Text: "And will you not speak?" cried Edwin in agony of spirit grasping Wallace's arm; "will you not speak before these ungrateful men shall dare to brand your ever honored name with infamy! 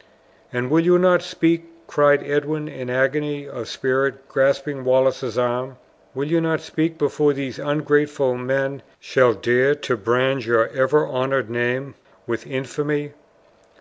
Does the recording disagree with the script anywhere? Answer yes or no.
no